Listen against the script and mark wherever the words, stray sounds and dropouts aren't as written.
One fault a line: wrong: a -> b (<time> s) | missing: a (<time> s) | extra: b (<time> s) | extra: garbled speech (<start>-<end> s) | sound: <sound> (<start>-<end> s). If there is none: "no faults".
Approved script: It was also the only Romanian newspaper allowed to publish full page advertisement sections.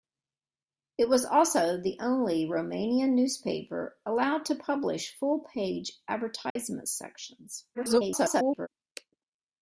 sound: dropout (6.5-6.6 s)
extra: garbled speech (7.7-8.7 s)